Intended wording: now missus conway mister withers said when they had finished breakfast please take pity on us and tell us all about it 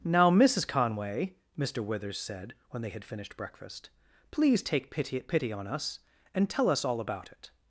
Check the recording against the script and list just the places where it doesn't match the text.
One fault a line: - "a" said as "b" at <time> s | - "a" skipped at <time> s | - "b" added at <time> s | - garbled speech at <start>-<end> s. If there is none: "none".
- "pity" added at 5.2 s